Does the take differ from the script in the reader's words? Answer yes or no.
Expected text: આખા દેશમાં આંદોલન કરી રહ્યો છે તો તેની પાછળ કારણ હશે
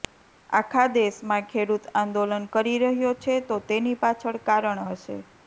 yes